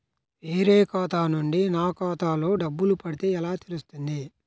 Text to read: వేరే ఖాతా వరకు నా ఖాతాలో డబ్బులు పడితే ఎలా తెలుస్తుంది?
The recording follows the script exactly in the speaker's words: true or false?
false